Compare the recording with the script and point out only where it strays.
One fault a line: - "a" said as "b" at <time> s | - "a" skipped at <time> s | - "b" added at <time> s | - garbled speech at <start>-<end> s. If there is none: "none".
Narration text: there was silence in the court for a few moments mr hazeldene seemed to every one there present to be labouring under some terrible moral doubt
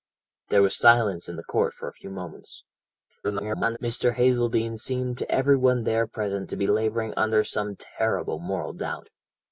- garbled speech at 3.2-3.8 s